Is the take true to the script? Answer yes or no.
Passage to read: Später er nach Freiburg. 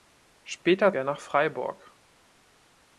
yes